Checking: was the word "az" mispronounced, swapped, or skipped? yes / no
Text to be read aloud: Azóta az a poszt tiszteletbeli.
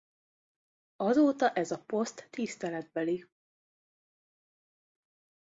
yes